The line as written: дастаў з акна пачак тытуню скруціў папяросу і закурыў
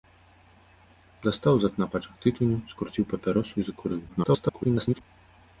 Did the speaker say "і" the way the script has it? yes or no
yes